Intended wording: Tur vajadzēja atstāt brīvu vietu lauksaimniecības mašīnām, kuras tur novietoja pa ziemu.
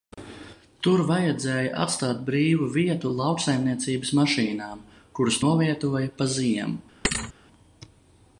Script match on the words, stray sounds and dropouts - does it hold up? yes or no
no